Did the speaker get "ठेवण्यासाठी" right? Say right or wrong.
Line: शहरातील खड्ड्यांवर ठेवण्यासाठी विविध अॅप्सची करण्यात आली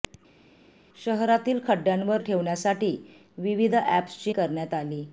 right